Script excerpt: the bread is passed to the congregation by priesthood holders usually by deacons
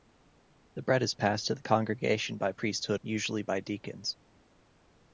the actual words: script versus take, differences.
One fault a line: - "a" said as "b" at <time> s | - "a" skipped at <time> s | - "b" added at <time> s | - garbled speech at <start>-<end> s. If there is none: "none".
- "holders" skipped at 3.0 s